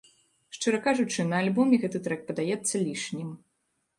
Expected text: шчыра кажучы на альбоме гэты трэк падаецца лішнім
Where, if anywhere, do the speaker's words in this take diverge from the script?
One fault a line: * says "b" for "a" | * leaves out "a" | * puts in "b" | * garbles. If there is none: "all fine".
all fine